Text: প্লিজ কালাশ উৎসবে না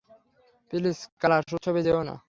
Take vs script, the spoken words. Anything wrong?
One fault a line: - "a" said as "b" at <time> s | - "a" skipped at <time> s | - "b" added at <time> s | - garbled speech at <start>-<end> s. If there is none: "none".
- "যেও" added at 1.8 s